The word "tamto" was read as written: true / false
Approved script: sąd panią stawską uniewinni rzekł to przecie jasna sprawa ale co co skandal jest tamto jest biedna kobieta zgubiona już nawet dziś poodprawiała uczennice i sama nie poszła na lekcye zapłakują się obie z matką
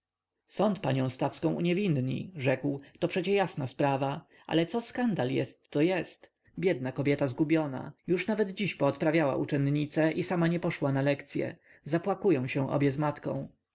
false